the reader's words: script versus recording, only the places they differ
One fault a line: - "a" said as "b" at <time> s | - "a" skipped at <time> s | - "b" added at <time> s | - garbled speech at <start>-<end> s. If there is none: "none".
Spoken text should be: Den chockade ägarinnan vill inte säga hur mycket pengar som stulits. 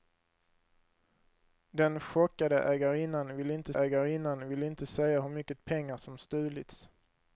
- "ägarinnan vill inte" added at 3.7 s